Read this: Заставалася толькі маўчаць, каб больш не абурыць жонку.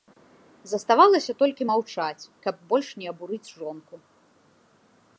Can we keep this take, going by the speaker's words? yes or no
yes